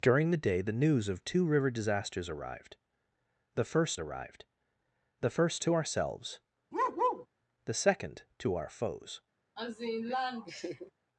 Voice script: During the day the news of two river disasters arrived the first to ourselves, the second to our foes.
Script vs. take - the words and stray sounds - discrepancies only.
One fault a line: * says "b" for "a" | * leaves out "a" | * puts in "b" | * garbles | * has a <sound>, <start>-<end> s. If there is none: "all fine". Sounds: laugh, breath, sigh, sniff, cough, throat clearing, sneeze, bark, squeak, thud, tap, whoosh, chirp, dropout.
* puts in "arrived the first"
* has a bark, 6.7-7.3 s
* has a laugh, 9.6-10.9 s